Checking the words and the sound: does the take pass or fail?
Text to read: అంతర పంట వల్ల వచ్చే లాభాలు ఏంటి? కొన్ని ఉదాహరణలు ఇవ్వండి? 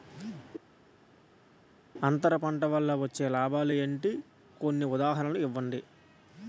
pass